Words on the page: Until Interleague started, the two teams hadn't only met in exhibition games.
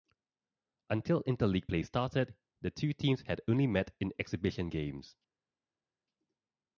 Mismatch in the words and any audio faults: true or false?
true